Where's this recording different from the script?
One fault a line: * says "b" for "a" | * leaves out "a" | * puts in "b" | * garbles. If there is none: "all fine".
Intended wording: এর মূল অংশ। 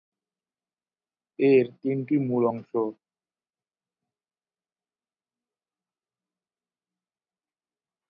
* puts in "তিনটি"